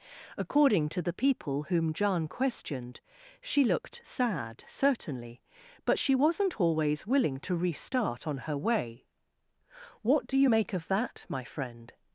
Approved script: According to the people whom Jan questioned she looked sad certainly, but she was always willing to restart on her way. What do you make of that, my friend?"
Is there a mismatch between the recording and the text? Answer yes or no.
yes